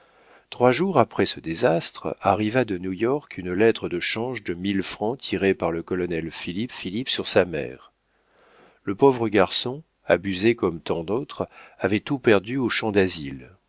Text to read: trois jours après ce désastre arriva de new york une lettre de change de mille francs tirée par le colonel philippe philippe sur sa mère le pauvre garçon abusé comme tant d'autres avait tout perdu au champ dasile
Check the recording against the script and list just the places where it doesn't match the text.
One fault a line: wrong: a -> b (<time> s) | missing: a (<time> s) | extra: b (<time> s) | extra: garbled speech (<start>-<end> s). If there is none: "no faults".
no faults